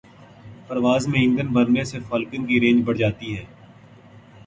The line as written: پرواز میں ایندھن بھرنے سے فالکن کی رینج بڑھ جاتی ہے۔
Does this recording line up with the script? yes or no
yes